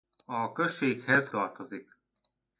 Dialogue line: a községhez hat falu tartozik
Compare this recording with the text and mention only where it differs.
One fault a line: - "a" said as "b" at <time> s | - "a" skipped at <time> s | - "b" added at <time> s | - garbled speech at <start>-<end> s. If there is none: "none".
- "hat falu" skipped at 1.3 s